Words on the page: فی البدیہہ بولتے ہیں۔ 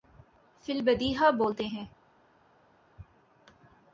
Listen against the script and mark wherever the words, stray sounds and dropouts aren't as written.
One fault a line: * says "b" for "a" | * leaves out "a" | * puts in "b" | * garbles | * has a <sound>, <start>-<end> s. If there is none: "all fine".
all fine